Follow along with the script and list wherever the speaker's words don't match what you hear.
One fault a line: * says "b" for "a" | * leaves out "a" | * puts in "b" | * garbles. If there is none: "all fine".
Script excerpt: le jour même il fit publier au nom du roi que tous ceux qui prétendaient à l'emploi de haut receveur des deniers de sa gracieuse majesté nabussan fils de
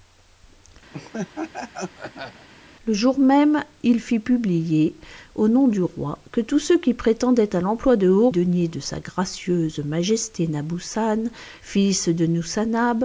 * leaves out "receveur des"